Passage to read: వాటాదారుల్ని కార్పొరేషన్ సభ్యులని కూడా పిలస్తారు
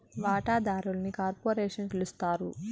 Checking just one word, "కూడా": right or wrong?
wrong